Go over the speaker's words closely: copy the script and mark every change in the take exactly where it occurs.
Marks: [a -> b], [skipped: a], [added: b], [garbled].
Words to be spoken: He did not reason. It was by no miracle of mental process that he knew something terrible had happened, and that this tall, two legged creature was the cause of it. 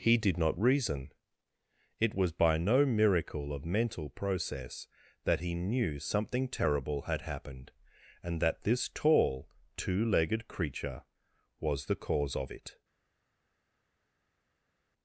He did not reason. It was by no miracle of mental process that he knew something terrible had happened, and that this tall, two legged creature was the cause of it.